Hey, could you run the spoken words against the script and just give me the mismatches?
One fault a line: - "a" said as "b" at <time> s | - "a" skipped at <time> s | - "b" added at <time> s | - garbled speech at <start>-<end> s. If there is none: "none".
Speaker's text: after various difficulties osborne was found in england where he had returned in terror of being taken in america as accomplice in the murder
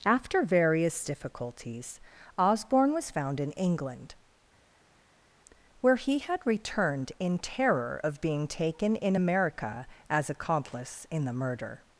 none